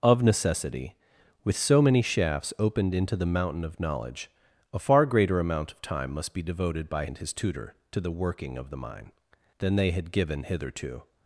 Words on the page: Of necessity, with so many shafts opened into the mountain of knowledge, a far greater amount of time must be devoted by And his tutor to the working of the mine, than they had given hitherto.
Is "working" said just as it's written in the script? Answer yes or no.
yes